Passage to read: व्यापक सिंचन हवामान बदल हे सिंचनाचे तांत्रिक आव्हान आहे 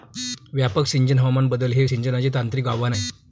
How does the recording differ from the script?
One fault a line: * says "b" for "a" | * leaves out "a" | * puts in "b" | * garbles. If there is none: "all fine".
all fine